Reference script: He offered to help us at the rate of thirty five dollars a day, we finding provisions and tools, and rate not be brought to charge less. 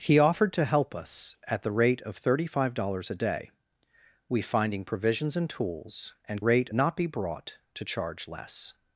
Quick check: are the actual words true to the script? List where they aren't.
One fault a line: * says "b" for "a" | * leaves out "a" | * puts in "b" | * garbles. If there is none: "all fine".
all fine